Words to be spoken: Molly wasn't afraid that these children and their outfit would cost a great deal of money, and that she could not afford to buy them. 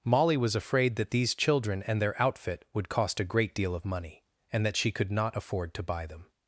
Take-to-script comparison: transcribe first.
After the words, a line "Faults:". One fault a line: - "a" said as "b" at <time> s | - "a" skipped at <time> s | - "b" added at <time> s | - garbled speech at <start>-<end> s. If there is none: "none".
Molly was afraid that these children and their outfit would cost a great deal of money, and that she could not afford to buy them.
Faults:
- "wasn't" said as "was" at 0.3 s